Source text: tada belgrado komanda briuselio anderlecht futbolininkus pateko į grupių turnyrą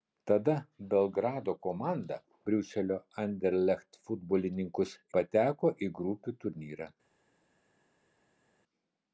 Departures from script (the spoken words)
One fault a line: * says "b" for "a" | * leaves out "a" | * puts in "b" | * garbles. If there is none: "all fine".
all fine